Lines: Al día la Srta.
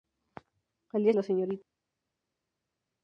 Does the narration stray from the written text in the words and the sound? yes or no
no